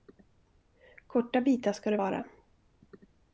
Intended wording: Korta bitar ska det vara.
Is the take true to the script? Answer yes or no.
yes